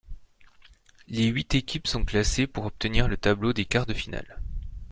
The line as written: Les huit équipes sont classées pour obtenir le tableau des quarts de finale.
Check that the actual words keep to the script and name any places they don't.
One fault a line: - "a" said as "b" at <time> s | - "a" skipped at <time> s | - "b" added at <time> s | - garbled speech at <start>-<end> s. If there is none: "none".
none